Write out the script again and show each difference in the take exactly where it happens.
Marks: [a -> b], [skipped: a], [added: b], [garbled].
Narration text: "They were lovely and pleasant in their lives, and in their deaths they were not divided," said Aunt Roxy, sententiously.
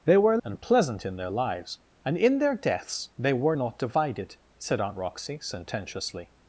"They were [skipped: lovely] and pleasant in their lives, and in their deaths they were not divided," said Aunt Roxy, sententiously.